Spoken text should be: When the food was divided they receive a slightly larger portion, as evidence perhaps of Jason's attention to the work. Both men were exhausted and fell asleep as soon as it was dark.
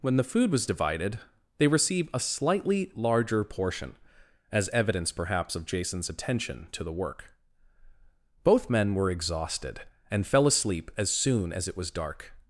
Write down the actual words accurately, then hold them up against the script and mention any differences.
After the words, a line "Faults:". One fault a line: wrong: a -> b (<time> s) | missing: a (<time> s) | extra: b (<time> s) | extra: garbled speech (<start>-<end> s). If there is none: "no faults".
When the food was divided they receive a slightly larger portion, as evidence perhaps of Jason's attention to the work. Both men were exhausted and fell asleep as soon as it was dark.
Faults:
no faults